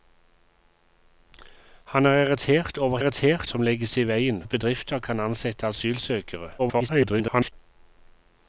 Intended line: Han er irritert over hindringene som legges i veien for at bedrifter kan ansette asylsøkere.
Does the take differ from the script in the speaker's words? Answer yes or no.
yes